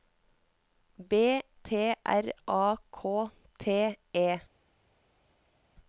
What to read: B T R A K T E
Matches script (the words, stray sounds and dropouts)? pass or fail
pass